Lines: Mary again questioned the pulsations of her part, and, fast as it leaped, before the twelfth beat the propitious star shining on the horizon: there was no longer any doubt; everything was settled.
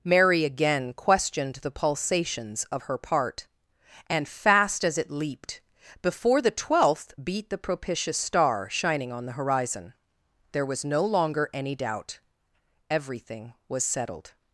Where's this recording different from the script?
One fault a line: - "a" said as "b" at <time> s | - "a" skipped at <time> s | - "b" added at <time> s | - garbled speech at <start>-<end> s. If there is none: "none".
none